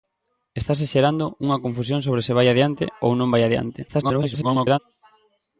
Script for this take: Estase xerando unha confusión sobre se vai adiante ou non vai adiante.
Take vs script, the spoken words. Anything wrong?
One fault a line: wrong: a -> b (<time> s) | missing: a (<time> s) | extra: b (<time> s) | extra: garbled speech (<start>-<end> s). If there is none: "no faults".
extra: garbled speech (3.9-4.8 s)